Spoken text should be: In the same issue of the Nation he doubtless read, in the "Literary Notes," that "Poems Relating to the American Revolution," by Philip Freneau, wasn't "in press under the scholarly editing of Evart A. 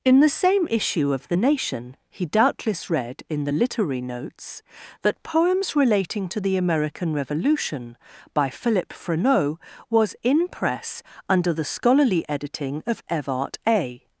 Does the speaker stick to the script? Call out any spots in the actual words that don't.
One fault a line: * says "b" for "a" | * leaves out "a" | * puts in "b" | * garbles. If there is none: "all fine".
* says "was" for "wasn't"